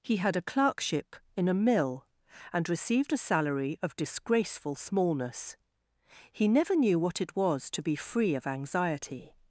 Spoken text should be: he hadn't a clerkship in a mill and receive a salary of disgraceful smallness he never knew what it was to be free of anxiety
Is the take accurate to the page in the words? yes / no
no